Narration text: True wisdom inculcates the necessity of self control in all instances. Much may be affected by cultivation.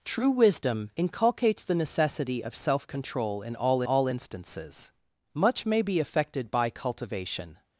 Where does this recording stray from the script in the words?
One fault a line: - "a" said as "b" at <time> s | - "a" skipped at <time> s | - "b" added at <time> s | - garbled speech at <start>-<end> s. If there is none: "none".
- "all" added at 3.8 s